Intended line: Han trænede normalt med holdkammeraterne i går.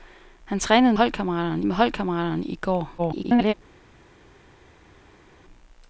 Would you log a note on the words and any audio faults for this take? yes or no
yes